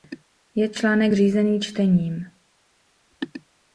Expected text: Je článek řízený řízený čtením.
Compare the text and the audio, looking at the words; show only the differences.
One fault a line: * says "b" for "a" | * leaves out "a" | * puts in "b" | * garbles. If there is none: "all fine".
* leaves out "řízený"